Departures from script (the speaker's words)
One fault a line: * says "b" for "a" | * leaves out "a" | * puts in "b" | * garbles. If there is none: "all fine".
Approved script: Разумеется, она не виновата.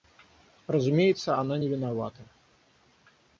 all fine